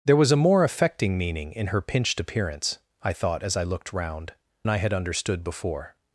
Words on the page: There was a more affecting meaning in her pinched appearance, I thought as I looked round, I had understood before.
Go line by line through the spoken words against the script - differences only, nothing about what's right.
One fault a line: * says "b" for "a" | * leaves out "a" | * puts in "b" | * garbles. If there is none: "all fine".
all fine